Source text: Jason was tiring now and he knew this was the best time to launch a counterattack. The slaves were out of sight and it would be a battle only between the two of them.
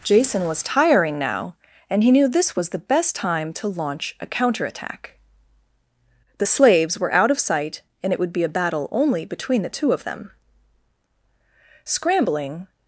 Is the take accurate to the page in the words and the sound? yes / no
no